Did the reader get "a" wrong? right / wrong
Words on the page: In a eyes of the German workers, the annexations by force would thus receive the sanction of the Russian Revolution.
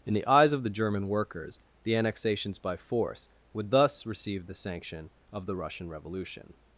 wrong